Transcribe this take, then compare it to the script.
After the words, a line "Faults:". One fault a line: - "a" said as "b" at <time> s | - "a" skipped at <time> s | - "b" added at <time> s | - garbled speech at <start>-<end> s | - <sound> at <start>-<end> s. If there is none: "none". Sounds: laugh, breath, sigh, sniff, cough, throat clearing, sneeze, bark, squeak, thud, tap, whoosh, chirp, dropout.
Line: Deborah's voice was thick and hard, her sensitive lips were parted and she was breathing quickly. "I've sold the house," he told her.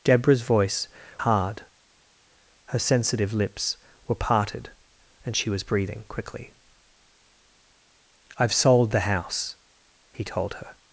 Deborah's voice hard, her sensitive lips were parted and she was breathing quickly. "I've sold the house," he told her.
Faults:
- "was thick and" skipped at 0.9 s